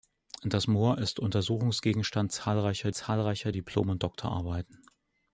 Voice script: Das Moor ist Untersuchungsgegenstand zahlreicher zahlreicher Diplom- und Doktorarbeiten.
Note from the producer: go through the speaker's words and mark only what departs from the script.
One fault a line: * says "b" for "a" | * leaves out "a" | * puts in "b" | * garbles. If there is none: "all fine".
all fine